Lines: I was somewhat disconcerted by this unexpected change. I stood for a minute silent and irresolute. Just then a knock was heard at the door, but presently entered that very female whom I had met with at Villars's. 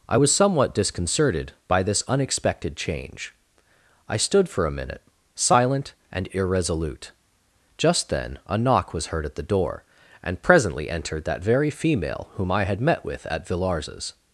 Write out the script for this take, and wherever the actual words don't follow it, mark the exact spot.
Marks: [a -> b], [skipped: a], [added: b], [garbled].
I was somewhat disconcerted by this unexpected change. I stood for a minute silent and irresolute. Just then a knock was heard at the door, [but -> and] presently entered that very female whom I had met with at Villars's.